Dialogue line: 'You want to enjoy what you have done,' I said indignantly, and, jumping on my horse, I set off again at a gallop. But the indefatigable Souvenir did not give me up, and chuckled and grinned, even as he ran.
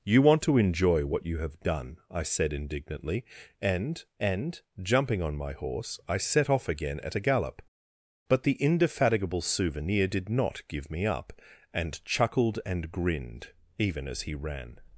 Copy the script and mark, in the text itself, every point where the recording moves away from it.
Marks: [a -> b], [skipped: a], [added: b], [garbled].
'You want to enjoy what you have done,' I said indignantly, and, [added: and] jumping on my horse, I set off again at a gallop. But the indefatigable Souvenir did not give me up, and chuckled and grinned, even as he ran.